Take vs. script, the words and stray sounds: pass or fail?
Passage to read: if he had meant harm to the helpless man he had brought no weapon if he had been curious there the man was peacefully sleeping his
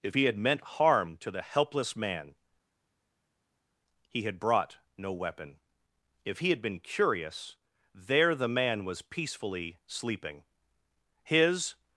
pass